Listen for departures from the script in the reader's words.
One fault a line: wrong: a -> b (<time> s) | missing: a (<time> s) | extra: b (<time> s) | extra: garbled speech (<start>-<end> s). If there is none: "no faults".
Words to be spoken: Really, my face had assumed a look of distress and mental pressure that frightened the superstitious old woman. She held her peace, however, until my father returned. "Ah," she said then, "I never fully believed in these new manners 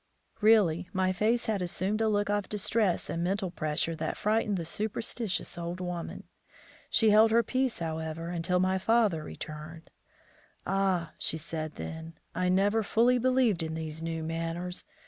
no faults